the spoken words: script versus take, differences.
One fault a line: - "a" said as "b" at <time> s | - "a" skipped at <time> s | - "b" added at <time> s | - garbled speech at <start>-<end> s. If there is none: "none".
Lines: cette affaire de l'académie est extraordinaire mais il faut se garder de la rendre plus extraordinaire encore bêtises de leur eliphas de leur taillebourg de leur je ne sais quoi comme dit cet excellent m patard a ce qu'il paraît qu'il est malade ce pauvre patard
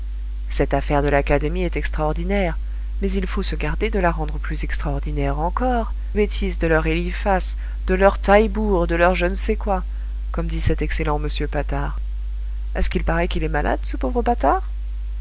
none